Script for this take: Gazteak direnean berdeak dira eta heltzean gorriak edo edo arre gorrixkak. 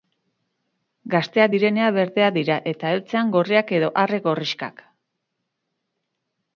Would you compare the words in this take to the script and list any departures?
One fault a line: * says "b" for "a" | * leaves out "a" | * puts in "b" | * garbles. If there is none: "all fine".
* leaves out "edo"